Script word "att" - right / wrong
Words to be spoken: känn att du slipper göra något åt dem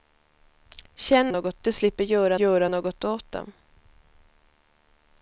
wrong